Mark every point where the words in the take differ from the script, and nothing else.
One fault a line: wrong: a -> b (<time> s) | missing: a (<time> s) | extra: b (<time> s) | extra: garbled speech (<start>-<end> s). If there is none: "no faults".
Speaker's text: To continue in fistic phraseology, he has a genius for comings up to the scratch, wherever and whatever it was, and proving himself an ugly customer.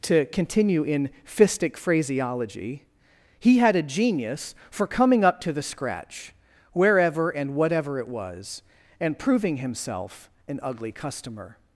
wrong: has -> had (3.6 s)
wrong: comings -> coming (4.9 s)